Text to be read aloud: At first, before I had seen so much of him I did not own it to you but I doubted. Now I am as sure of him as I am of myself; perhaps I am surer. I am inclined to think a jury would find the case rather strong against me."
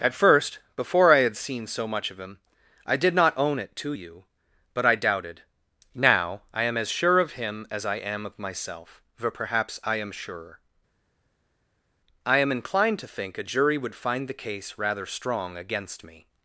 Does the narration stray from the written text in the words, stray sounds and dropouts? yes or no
yes